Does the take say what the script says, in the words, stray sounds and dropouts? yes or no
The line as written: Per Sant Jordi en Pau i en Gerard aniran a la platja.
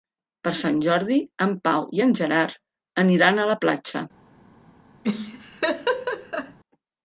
no